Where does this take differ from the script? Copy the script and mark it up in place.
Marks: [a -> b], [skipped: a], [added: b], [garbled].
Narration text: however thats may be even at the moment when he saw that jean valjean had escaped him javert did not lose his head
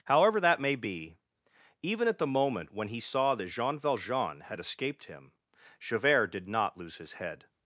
however [thats -> that] may be even at the moment when he saw that jean valjean had escaped him javert did not lose his head